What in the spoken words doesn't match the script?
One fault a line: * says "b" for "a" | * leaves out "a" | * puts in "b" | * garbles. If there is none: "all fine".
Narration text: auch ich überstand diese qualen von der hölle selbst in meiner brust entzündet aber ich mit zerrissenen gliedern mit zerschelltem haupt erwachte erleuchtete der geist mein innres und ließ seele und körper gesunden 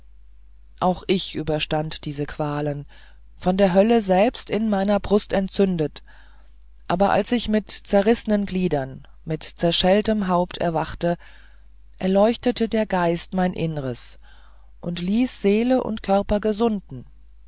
* puts in "als"